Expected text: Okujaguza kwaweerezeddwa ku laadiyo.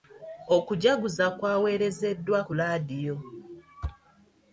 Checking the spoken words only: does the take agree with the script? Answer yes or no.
yes